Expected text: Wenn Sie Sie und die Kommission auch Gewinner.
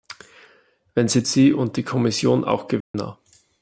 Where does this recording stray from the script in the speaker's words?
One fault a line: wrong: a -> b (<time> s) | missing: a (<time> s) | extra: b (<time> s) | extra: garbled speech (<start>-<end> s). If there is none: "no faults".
no faults